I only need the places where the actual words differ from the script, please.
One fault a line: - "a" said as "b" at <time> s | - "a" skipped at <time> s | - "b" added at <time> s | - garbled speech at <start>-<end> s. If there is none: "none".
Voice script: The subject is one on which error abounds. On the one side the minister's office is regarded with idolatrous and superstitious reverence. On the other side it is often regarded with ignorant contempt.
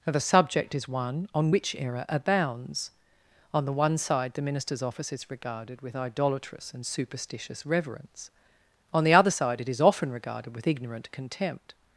none